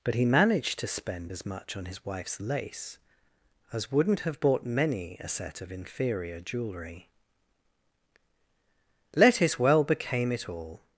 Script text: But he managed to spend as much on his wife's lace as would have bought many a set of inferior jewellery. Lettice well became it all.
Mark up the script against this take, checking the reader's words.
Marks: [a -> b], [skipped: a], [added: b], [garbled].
But he managed to spend as much on his wife's lace as [would -> wouldn't] have bought many a set of inferior jewellery. Lettice well became it all.